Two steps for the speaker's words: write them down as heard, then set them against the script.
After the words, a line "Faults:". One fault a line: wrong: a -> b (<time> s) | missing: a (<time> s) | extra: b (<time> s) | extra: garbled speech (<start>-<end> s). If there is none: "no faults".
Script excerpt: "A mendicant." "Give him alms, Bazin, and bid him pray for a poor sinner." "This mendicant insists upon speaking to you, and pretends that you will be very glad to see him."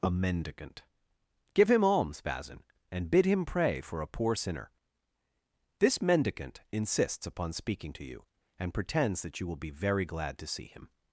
"A mendicant." "Give him alms, Bazin, and bid him pray for a poor sinner." "This mendicant insists upon speaking to you, and pretends that you will be very glad to see him."
Faults:
no faults